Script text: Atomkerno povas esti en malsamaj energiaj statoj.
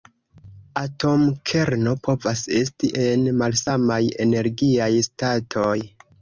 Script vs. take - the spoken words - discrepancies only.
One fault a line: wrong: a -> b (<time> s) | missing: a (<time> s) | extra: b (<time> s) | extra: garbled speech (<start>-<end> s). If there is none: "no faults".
no faults